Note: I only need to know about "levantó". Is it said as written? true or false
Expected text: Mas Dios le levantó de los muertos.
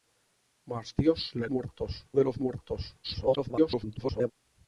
false